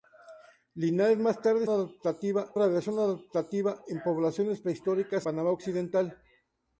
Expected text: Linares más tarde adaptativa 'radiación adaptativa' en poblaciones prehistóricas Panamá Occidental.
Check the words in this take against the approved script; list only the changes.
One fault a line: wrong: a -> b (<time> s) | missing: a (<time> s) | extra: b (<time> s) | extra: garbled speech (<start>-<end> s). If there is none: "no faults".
no faults